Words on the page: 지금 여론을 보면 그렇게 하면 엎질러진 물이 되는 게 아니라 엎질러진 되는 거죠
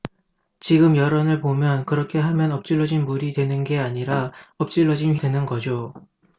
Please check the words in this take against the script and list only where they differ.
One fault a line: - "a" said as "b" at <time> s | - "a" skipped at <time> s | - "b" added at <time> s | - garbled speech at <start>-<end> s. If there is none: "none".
none